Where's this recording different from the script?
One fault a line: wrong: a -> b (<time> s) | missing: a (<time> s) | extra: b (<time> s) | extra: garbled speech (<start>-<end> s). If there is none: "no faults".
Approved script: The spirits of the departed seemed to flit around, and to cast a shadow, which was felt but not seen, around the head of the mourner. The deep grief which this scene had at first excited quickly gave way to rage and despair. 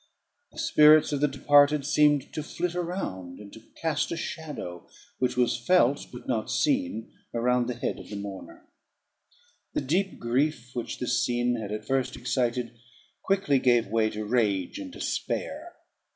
no faults